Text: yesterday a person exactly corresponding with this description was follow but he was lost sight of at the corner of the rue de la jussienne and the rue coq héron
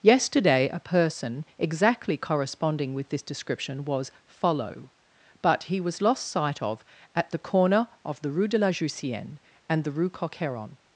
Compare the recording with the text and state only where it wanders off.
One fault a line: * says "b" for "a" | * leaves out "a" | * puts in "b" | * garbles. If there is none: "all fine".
all fine